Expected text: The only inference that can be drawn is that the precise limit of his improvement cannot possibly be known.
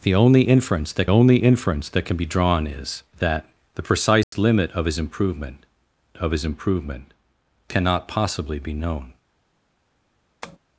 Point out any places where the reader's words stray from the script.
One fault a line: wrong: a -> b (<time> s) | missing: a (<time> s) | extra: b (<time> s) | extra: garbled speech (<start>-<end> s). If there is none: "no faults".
extra: only inference that (1.1 s)
extra: of his improvement (6.2 s)